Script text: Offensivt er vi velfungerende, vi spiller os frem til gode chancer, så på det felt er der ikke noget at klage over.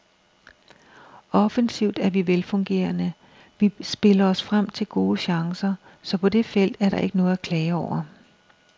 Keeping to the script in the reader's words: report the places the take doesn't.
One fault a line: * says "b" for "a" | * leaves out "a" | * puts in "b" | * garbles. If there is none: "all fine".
all fine